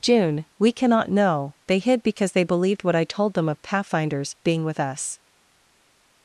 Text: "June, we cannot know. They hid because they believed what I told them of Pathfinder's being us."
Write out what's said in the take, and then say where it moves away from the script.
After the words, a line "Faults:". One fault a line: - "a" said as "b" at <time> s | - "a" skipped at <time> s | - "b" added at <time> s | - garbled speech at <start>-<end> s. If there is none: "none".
"June, we cannot know. They hid because they believed what I told them of Pathfinder's being with us."
Faults:
- "with" added at 4.6 s